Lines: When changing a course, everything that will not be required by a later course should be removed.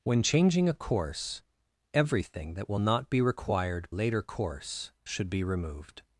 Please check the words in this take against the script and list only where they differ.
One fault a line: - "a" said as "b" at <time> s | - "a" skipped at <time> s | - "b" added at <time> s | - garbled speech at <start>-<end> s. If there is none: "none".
- "by a" skipped at 3.9 s